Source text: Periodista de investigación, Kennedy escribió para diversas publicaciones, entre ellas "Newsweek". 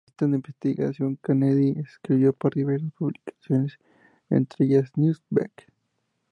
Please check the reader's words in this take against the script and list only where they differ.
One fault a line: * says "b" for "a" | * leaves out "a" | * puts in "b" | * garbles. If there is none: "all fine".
all fine